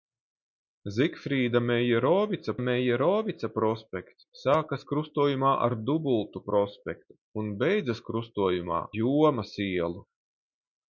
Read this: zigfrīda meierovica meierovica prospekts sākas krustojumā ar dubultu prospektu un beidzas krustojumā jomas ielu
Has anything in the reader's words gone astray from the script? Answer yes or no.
no